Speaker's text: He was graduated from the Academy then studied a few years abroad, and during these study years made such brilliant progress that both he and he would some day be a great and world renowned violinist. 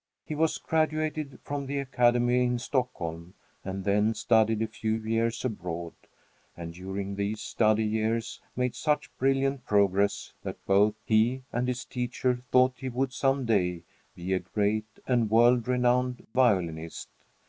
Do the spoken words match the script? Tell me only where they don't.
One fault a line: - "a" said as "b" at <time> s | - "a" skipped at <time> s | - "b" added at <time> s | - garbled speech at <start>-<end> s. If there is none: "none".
- "in Stockholm and" added at 2.4 s
- "his teacher thought" added at 11.7 s